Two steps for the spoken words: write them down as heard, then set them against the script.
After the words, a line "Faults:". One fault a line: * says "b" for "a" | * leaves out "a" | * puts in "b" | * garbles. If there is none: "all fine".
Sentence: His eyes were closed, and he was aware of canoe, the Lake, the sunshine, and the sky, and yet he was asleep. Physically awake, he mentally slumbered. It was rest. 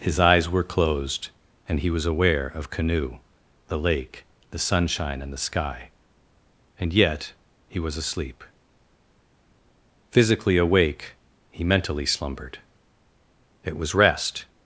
His eyes were closed, and he was aware of canoe, the Lake, the sunshine, and the sky, and yet he was asleep. Physically awake, he mentally slumbered. It was rest.
Faults:
all fine